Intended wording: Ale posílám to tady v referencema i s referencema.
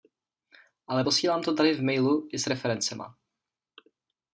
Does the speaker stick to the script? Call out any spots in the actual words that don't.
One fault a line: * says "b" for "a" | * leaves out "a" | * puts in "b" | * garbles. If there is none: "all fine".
* says "mailu" for "referencema"